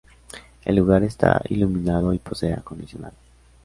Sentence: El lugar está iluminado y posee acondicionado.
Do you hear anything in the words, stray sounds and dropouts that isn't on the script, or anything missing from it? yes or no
no